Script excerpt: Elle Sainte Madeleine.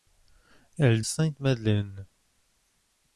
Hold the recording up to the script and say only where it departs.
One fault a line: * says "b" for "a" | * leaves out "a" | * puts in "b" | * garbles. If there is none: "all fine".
all fine